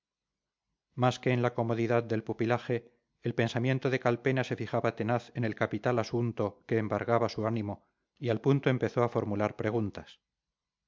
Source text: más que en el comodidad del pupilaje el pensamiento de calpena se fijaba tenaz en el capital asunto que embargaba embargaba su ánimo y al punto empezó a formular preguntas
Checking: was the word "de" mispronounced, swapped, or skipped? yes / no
no